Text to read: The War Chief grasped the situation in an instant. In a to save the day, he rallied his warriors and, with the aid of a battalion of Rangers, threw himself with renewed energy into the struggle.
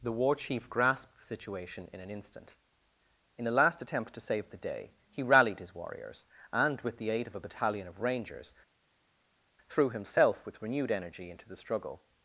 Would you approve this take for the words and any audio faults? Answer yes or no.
no